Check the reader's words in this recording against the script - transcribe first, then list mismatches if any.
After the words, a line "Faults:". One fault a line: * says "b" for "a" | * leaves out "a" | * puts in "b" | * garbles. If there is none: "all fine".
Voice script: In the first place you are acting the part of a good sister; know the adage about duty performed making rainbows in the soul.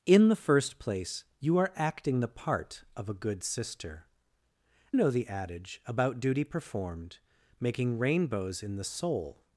In the first place you are acting the part of a good sister; know the adage about duty performed making rainbows in the soul.
Faults:
all fine